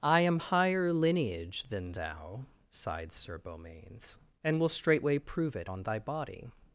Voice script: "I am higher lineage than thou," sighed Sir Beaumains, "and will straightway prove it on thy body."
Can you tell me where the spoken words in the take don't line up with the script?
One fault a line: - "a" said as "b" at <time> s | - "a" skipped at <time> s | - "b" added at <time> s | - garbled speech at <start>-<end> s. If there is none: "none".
none